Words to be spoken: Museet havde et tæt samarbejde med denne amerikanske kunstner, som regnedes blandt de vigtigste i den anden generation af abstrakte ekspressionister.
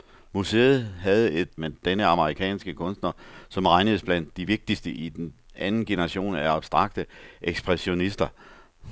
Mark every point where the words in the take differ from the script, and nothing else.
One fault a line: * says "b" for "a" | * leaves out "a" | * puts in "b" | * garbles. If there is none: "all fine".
* leaves out "tæt samarbejde"